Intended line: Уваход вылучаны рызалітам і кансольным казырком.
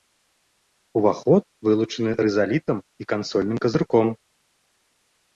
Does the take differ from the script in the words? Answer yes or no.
no